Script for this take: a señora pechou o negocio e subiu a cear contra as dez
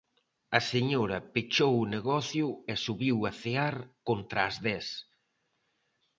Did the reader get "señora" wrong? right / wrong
right